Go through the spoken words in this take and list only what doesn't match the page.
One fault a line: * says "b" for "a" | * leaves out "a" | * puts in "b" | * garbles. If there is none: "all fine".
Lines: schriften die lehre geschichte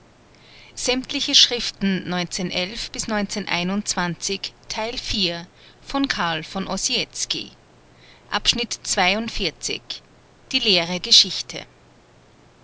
all fine